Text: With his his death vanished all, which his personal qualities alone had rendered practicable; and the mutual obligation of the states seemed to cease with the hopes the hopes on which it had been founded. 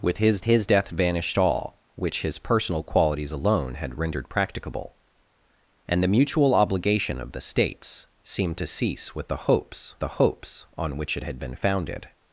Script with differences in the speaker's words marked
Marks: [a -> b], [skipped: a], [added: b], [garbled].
With his his death vanished all, which his personal qualities alone had rendered practicable; and the mutual obligation of the states seemed to cease with the hopes the hopes on which it had been founded.